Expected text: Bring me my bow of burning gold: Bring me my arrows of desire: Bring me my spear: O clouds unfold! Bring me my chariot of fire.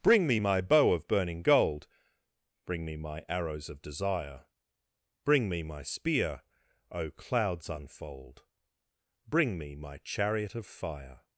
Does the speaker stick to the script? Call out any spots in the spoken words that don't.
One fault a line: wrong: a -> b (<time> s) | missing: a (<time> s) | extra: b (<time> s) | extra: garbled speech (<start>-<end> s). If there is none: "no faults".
no faults